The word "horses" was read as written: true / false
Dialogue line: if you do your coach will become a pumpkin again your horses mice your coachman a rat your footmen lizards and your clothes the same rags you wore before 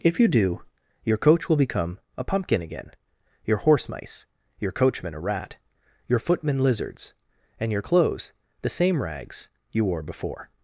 false